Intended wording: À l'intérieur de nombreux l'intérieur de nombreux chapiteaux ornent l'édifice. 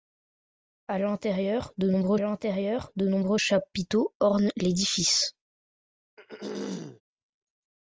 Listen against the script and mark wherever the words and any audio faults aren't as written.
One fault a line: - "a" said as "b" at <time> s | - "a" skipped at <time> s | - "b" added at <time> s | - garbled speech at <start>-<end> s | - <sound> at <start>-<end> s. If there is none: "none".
- throat clearing at 6.2-7.0 s